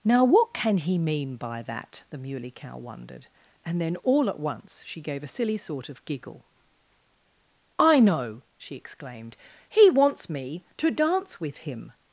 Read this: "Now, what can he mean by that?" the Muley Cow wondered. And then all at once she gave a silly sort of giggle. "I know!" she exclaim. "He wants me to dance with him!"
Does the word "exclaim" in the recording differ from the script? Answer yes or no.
yes